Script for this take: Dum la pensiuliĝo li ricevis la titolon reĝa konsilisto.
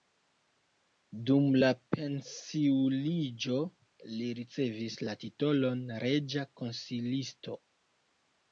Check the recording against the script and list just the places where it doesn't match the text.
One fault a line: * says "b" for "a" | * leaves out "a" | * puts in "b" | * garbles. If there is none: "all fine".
all fine